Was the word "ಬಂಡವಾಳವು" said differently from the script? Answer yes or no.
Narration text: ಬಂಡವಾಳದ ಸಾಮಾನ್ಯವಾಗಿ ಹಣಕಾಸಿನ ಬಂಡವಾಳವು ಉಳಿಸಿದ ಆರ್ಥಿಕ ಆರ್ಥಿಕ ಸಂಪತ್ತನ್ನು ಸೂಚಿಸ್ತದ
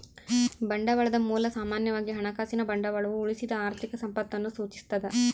no